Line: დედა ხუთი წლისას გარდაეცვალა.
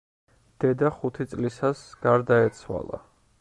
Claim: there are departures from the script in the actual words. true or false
false